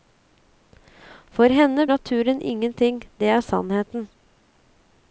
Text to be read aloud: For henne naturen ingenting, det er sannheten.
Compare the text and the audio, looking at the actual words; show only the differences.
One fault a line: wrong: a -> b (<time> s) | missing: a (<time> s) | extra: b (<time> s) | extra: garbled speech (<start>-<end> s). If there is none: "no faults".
no faults